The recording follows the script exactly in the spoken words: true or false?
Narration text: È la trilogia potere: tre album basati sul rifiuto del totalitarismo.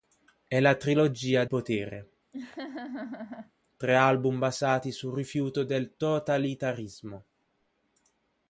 true